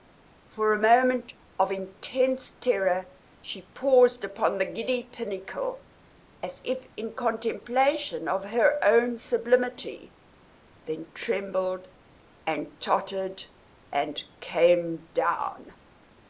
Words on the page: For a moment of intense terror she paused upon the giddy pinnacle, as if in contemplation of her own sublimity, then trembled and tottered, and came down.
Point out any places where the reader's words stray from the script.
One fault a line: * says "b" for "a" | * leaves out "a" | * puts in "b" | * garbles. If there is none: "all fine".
all fine